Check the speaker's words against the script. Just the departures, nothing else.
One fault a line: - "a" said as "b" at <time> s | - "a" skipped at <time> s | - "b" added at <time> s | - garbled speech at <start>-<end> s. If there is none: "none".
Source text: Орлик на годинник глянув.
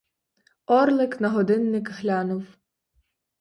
none